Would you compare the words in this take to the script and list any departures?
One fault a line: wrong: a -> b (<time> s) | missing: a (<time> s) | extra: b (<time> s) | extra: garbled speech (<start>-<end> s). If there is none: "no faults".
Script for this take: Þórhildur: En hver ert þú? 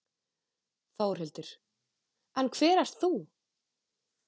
no faults